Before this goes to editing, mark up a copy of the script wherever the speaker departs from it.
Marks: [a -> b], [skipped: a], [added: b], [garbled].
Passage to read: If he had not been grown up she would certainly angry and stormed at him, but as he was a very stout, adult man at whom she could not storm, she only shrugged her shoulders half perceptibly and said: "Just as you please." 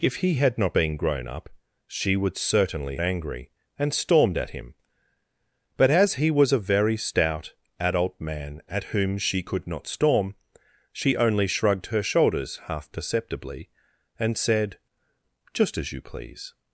If he had not been grown up she would certainly angry and stormed at him, but as he was a very stout, adult man at whom she could not storm, she only shrugged her shoulders half perceptibly and said: "Just as you please."